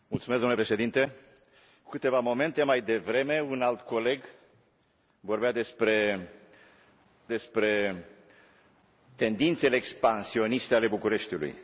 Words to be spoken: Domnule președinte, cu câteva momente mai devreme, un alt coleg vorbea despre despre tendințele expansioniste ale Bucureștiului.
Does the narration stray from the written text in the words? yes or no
no